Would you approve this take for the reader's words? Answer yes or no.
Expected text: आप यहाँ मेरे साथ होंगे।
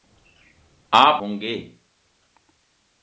no